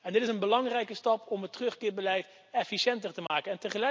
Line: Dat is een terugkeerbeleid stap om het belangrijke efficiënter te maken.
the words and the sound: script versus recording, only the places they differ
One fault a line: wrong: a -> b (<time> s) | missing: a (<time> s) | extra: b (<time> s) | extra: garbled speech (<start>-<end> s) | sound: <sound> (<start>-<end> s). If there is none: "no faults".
wrong: Dat -> Dit (0.0 s)
wrong: terugkeerbeleid -> belangrijke (0.4 s)
wrong: belangrijke -> terugkeerbeleid (1.5 s)
sound: dropout (3.3-3.3 s)